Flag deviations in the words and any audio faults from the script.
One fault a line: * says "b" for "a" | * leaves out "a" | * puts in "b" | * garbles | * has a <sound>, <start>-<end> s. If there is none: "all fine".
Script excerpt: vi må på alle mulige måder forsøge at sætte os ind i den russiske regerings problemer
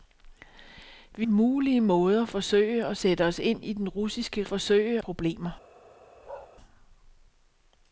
* leaves out "må på alle"
* says "forsøge" for "regerings"
* has a bark, 6.2-6.5 s